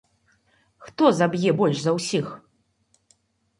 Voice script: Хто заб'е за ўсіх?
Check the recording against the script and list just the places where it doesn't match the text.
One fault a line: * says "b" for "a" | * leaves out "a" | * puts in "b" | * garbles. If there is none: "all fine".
* puts in "больш"